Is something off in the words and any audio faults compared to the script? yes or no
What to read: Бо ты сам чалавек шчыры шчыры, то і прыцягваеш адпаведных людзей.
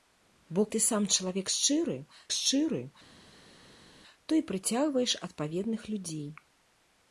no